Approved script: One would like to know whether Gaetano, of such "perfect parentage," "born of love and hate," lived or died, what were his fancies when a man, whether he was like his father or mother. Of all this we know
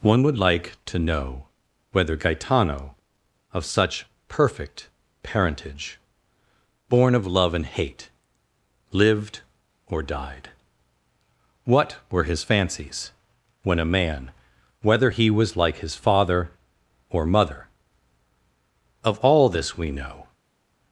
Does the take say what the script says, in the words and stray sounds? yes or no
yes